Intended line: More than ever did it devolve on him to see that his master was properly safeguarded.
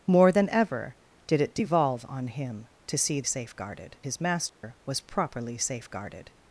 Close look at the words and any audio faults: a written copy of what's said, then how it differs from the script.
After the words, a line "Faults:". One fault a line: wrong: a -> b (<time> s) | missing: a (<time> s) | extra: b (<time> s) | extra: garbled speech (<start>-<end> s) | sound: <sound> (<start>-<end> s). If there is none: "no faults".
More than ever did it devolve on him to see safeguarded his master was properly safeguarded.
Faults:
wrong: that -> safeguarded (3.2 s)
sound: dropout (4.5-4.6 s)